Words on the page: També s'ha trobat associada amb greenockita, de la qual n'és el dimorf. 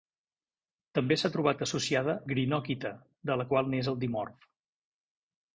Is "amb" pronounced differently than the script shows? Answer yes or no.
yes